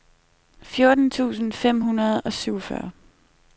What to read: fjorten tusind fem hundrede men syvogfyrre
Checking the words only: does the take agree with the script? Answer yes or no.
no